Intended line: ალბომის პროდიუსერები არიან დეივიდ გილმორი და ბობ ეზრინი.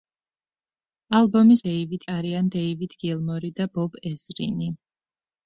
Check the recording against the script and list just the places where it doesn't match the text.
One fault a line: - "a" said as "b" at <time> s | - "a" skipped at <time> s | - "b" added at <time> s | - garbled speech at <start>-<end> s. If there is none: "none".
- "პროდიუსერები" said as "დეივიდ" at 1.7 s